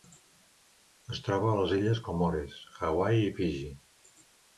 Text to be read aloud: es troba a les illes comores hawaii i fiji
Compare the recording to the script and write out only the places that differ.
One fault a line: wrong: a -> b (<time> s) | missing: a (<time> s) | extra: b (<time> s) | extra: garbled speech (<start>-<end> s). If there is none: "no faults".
no faults